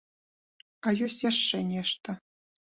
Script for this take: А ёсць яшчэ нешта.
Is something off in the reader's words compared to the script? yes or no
no